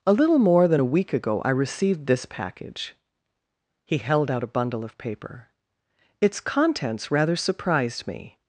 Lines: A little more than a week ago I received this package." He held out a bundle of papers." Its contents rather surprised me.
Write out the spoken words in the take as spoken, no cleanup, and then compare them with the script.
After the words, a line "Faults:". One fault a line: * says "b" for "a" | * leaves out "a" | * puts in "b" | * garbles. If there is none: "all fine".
A little more than a week ago I received this package." He held out a bundle of paper." Its contents rather surprised me.
Faults:
* says "paper" for "papers"